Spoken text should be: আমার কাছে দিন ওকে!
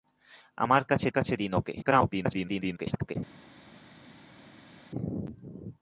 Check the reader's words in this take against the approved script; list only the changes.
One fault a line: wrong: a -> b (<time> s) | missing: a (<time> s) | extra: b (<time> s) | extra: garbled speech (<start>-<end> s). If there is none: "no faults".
extra: কাছে (1.1 s)
extra: garbled speech (1.8-3.2 s)